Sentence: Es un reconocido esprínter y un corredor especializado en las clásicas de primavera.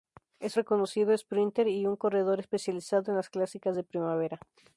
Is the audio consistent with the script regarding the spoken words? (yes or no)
no